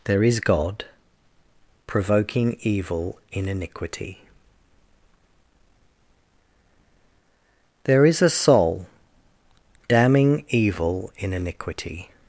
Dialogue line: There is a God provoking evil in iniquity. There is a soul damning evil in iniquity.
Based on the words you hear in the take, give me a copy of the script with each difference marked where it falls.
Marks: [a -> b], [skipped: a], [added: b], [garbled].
There is [skipped: a] God provoking evil in iniquity. There is a soul damning evil in iniquity.